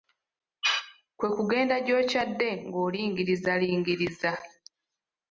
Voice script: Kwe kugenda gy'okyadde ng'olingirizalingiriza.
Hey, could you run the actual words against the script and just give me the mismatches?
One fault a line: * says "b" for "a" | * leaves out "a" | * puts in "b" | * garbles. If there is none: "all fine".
all fine